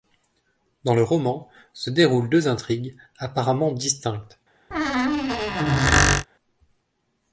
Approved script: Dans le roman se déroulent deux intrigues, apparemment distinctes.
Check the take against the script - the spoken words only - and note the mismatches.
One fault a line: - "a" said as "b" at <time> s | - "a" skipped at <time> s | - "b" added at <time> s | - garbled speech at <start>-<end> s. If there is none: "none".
none